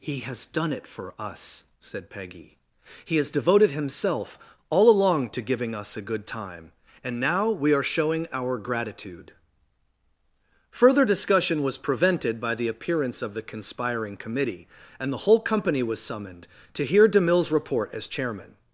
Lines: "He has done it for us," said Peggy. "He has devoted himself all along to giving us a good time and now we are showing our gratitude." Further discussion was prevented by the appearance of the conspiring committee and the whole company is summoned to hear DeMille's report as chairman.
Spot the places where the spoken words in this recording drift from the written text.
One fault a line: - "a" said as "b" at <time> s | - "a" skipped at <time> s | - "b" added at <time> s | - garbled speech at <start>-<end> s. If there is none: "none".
- "is" said as "was" at 15.8 s